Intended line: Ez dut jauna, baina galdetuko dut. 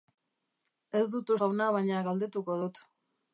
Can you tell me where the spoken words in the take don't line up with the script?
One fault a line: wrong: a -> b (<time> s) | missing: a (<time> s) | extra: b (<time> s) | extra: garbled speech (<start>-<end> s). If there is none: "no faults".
no faults